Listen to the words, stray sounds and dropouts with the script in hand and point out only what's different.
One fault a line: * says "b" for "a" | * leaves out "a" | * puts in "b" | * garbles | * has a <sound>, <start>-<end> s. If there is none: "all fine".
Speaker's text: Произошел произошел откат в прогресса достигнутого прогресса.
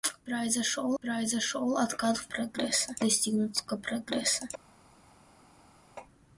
all fine